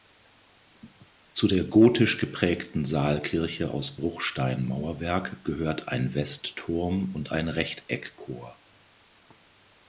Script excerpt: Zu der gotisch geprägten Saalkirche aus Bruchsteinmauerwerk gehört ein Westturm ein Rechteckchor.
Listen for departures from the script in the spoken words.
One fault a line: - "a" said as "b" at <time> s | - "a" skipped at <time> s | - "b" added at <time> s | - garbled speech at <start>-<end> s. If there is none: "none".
- "und" added at 7.1 s